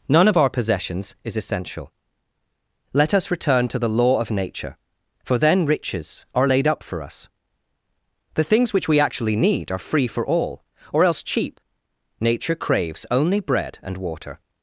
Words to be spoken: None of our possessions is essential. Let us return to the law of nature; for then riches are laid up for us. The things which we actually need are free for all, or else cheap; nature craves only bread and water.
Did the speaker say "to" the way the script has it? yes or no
yes